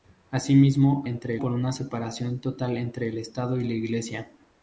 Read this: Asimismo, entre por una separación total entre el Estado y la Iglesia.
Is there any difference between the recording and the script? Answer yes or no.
no